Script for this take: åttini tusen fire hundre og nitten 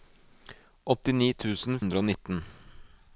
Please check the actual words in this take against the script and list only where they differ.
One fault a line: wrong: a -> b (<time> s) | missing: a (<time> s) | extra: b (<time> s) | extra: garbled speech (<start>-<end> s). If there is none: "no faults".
missing: fire (1.8 s)